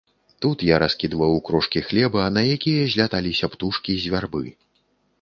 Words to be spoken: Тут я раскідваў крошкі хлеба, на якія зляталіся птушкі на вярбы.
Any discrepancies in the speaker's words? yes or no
yes